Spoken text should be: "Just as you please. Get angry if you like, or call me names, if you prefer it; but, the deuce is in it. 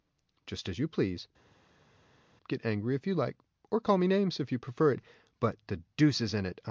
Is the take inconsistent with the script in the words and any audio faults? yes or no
no